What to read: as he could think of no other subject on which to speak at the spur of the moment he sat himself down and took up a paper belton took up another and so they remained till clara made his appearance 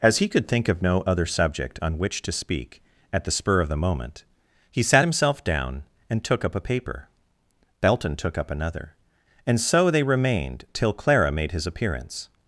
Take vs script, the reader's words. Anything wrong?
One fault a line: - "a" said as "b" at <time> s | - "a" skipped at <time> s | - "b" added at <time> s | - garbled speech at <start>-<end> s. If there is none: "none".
none